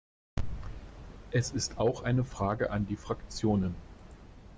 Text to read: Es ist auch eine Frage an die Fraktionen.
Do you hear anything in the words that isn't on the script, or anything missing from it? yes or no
no